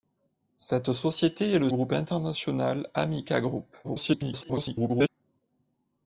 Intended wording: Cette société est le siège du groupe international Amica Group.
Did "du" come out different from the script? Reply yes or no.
yes